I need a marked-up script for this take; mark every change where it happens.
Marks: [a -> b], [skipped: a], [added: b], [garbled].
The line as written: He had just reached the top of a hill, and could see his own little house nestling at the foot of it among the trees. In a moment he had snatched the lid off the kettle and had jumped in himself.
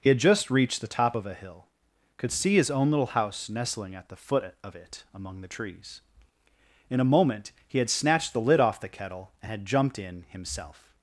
He had just reached the top of a hill, [skipped: and] could see his own little house nestling at the foot of it among the trees. In a moment he had snatched the lid off the kettle and had jumped in himself.